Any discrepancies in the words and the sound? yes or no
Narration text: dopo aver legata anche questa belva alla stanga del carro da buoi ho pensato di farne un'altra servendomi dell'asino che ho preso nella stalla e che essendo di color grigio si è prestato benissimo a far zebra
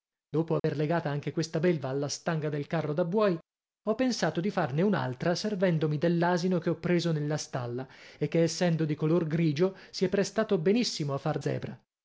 yes